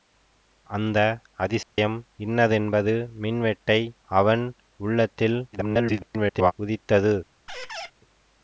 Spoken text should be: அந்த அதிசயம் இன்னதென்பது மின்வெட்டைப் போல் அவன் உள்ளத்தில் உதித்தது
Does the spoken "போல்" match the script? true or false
false